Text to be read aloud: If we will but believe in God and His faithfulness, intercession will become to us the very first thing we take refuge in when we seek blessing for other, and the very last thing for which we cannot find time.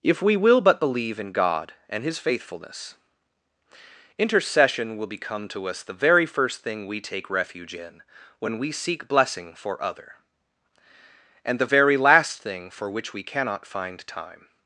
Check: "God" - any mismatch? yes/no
no